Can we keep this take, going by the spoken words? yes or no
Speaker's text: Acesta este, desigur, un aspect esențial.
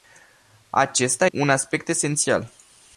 no